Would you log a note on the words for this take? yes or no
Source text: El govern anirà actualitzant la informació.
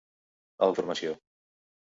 yes